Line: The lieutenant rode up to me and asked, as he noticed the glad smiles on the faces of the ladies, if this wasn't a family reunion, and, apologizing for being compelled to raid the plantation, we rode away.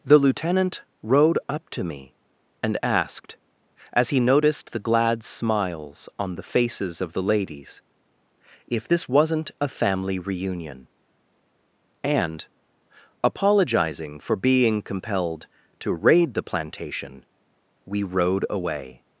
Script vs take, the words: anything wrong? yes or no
no